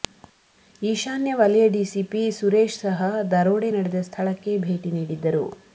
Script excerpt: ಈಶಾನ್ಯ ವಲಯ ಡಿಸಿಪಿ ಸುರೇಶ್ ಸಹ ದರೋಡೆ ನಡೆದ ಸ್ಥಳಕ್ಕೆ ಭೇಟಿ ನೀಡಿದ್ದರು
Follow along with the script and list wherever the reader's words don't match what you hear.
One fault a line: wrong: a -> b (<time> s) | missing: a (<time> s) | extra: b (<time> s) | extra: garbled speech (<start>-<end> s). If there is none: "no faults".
no faults